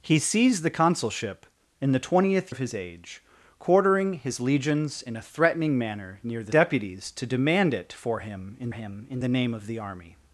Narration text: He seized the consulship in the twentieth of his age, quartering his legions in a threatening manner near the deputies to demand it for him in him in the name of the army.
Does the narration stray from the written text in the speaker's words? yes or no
no